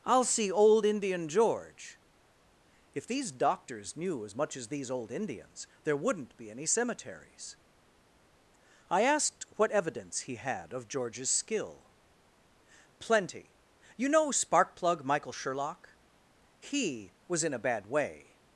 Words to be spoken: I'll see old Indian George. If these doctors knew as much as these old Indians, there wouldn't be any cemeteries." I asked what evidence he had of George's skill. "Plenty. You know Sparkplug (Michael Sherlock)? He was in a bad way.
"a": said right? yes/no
yes